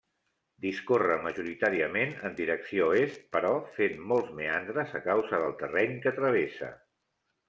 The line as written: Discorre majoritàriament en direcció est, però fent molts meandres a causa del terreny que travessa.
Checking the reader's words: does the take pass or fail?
pass